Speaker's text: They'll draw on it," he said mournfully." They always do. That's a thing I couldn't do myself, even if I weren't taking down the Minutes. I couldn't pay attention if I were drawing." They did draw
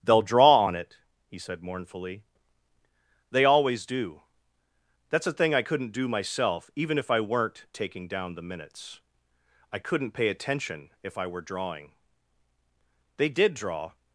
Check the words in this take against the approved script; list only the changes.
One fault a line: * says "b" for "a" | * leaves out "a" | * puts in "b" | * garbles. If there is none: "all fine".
all fine